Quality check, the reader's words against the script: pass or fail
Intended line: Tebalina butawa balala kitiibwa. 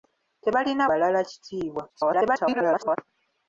fail